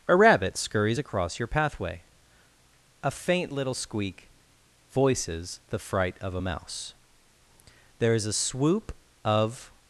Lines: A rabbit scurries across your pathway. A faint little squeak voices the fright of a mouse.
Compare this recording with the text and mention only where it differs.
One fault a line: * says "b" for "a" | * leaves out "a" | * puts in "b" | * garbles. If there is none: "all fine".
* puts in "There is a swoop of"